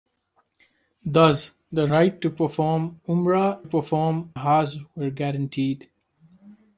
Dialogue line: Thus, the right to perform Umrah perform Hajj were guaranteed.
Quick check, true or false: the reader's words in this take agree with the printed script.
true